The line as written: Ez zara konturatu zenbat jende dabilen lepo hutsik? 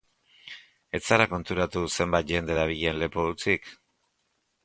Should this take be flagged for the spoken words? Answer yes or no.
no